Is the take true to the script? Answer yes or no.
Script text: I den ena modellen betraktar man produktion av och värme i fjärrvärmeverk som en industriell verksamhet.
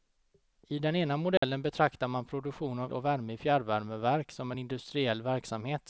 yes